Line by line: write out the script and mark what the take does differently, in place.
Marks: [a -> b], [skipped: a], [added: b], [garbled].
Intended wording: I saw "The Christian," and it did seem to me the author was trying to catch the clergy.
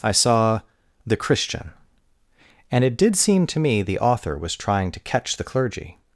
I saw "The Christian," and it did seem to me the author was trying to catch the clergy.